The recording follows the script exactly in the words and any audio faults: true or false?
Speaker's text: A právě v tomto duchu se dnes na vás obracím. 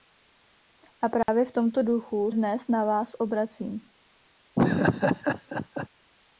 false